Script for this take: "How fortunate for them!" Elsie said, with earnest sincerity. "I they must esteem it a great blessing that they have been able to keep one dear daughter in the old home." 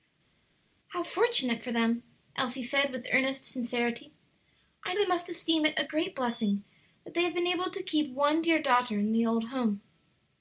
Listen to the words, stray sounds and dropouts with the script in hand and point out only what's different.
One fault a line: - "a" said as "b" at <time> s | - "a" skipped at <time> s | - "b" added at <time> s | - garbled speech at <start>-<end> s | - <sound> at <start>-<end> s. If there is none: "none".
none